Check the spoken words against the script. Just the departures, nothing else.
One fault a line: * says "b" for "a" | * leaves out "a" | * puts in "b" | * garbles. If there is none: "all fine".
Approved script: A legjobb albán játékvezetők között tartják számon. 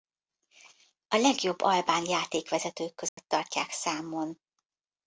all fine